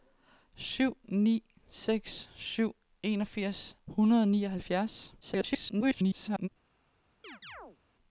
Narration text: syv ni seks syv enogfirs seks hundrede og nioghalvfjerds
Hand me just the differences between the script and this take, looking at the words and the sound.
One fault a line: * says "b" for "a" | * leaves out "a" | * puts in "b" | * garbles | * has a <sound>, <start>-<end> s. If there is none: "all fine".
* leaves out "seks"
* garbles
* has a chirp, 7.2-7.8 s